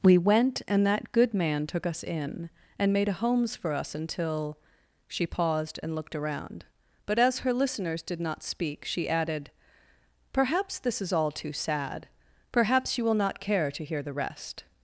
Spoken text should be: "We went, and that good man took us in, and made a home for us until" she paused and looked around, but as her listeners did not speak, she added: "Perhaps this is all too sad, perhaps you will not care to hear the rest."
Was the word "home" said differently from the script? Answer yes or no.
yes